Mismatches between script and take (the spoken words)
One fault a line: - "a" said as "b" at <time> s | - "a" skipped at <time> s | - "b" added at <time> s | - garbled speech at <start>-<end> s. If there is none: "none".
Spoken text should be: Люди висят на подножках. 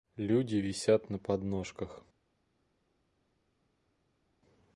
none